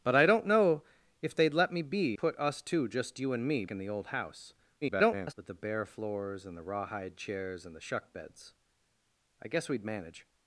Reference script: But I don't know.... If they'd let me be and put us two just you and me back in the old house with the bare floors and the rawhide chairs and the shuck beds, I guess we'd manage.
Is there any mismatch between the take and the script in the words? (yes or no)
yes